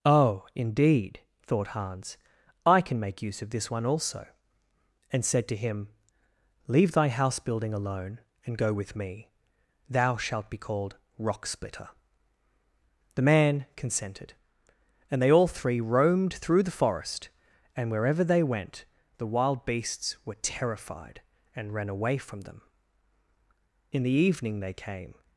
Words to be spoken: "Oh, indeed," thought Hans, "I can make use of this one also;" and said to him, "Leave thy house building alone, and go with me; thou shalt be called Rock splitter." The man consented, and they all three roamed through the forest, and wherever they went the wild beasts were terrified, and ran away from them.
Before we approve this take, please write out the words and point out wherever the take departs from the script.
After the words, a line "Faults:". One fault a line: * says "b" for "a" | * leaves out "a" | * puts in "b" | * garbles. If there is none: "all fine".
"Oh, indeed," thought Hans, "I can make use of this one also;" and said to him, "Leave thy house building alone, and go with me; thou shalt be called Rock splitter." The man consented, and they all three roamed through the forest, and wherever they went the wild beasts were terrified, and ran away from them. In the evening they came
Faults:
* puts in "In the evening they came"